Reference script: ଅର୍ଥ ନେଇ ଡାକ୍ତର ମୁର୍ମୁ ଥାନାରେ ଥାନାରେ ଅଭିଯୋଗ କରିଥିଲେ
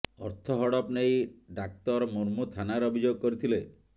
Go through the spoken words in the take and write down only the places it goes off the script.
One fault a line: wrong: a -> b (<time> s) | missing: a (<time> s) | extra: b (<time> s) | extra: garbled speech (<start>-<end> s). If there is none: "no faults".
extra: ହଡପ (0.6 s)
missing: ଥାନାରେ (2.9 s)